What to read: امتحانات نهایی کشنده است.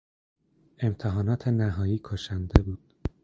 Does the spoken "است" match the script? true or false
false